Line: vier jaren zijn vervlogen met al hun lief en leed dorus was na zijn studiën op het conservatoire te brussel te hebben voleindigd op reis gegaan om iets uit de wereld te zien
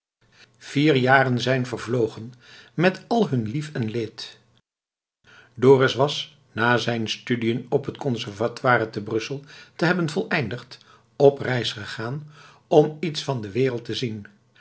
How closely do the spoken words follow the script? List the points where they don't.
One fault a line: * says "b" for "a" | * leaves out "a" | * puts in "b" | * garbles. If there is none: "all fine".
* says "van" for "uit"